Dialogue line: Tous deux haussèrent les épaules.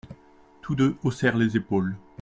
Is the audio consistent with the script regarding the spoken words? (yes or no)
yes